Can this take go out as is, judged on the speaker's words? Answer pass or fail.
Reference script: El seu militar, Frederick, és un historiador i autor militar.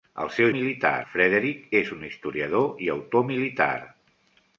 pass